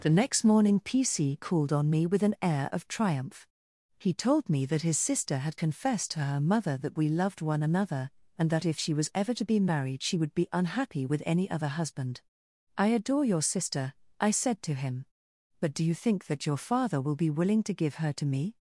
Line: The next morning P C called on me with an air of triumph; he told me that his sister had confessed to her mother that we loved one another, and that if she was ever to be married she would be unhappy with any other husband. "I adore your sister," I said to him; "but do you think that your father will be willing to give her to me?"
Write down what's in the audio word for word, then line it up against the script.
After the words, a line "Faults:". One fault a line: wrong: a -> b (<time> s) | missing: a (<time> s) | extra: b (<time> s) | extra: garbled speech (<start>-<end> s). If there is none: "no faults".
The next morning P C called on me with an air of triumph; he told me that his sister had confessed to her mother that we loved one another, and that if she was ever to be married she would be unhappy with any other husband. "I adore your sister," I said to him; "but do you think that your father will be willing to give her to me?"
Faults:
no faults